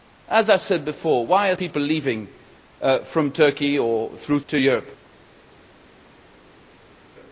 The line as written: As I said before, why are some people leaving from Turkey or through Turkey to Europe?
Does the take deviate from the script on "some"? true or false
true